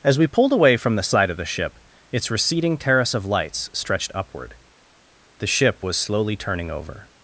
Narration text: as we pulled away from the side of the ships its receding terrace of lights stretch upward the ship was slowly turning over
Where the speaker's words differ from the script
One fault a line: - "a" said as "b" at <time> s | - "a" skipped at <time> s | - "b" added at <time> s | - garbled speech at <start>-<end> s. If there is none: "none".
- "ships" said as "ship" at 1.4 s
- "stretch" said as "stretched" at 3.7 s